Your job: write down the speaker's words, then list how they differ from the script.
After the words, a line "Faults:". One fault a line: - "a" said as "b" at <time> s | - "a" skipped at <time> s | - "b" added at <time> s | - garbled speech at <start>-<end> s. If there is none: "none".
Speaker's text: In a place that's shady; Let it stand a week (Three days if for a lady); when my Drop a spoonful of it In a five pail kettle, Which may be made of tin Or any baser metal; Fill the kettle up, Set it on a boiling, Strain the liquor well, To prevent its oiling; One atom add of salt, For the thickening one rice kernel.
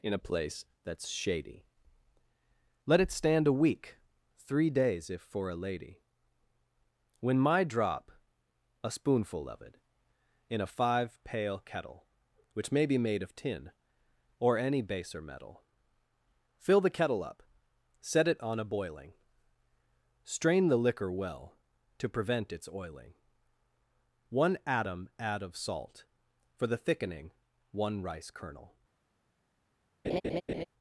In a place that's shady; Let it stand a week (Three days if for a lady); when my Drop a spoonful of it In a five pail kettle, Which may be made of tin Or any baser metal; Fill the kettle up, Set it on a boiling, Strain the liquor well, To prevent its oiling; One atom add of salt, For the thickening one rice kernel.
Faults:
none